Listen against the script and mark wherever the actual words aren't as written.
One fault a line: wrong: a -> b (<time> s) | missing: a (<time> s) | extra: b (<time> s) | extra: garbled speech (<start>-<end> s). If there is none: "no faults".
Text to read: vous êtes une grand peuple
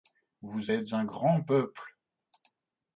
wrong: une -> un (0.9 s)